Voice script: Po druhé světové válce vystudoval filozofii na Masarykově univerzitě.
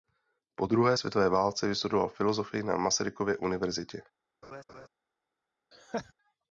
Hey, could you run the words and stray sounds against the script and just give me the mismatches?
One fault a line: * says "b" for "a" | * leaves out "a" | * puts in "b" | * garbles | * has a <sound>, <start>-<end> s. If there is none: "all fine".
* has a laugh, 4.4-4.9 s
* has a laugh, 5.7-6.1 s